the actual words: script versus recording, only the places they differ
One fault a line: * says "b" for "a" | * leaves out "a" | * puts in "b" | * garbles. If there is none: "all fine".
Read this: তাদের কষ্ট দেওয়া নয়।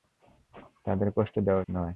all fine